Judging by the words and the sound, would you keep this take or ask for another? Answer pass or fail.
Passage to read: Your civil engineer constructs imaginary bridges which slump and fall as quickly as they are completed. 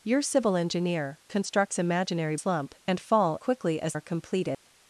fail